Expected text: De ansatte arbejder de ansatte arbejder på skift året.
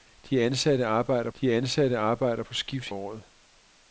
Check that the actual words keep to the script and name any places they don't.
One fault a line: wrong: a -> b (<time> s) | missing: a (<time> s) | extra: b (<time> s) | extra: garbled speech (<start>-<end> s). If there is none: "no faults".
no faults